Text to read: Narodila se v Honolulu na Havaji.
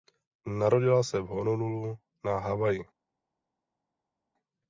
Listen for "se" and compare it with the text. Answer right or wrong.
right